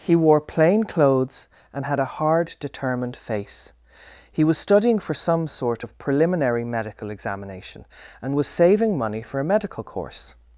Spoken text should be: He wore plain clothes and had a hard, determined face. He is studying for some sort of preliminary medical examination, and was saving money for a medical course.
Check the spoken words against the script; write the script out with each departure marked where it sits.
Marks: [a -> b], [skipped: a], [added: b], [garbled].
He wore plain clothes and had a hard, determined face. He [is -> was] studying for some sort of preliminary medical examination, and was saving money for a medical course.